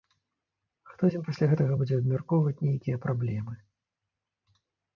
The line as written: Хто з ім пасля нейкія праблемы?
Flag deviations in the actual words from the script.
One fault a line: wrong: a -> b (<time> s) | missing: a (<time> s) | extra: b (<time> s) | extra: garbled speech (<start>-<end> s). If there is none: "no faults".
extra: гэтага будзе абмяркоўваць (1.5 s)